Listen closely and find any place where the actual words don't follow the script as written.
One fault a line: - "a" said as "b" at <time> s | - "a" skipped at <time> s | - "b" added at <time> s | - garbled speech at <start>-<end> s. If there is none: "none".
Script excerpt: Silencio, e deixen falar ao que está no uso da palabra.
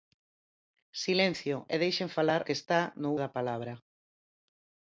- "ao" skipped at 2.4 s
- "uso" skipped at 3.1 s